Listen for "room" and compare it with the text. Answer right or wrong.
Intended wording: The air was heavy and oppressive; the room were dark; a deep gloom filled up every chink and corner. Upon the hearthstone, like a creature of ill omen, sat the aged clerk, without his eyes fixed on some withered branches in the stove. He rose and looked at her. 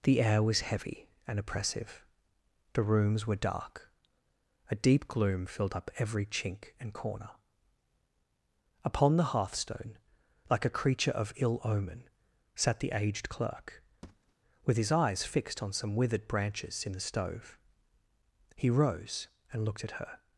wrong